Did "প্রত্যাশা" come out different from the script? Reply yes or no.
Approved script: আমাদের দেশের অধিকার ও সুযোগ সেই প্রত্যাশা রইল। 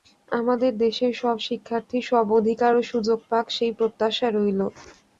no